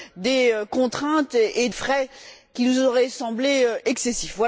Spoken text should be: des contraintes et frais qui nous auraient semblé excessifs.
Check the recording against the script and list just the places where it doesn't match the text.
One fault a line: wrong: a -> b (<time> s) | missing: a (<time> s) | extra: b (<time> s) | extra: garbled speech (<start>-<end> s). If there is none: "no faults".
no faults